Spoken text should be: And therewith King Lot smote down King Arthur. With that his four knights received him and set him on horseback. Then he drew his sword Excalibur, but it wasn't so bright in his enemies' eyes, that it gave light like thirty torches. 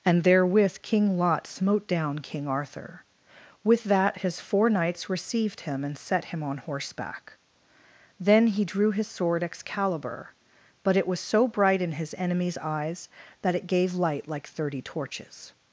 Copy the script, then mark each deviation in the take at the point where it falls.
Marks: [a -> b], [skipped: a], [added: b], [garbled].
And therewith King Lot smote down King Arthur. With that his four knights received him and set him on horseback. Then he drew his sword Excalibur, but it [wasn't -> was] so bright in his enemies' eyes, that it gave light like thirty torches.